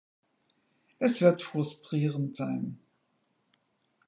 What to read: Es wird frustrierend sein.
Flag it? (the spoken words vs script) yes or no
no